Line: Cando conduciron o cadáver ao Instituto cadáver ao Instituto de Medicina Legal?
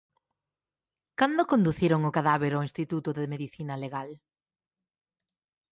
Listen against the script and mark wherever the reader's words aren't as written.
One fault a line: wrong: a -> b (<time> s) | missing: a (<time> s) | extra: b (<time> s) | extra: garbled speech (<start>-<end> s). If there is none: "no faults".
missing: cadáver ao Instituto (3.1 s)